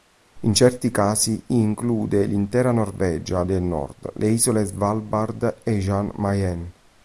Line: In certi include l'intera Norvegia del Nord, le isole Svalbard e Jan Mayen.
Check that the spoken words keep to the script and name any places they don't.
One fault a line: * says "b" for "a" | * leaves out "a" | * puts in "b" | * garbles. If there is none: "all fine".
* puts in "casi"